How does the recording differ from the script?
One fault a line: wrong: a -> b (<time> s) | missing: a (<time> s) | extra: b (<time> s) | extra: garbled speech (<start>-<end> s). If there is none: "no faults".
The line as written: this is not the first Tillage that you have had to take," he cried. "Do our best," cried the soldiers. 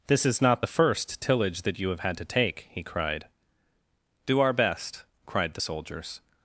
no faults